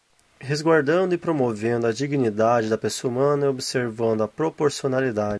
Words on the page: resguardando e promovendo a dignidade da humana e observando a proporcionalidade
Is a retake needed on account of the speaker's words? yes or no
yes